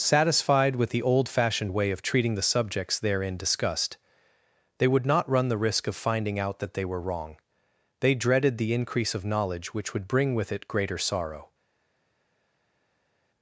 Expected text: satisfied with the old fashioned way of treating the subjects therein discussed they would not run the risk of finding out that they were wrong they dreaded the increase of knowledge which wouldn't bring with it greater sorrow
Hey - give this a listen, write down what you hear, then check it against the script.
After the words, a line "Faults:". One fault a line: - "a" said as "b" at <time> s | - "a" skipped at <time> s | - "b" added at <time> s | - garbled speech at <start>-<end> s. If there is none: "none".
satisfied with the old fashioned way of treating the subjects therein discussed they would not run the risk of finding out that they were wrong they dreaded the increase of knowledge which would bring with it greater sorrow
Faults:
- "wouldn't" said as "would" at 9.9 s